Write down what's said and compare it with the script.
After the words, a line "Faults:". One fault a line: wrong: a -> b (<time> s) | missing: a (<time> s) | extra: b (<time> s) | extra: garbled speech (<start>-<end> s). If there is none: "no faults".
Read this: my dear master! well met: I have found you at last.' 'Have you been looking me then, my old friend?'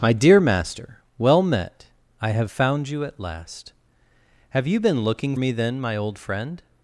my dear master! well met: I have found you at last.' 'Have you been looking me then, my old friend?'
Faults:
no faults